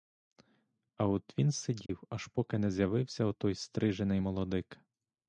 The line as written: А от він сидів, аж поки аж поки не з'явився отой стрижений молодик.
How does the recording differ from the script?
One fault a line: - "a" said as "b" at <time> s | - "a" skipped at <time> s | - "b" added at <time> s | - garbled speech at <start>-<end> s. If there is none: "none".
- "аж поки" skipped at 2.6 s